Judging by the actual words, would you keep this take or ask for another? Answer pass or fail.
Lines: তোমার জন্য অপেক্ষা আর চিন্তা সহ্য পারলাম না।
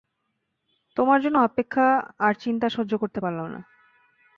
fail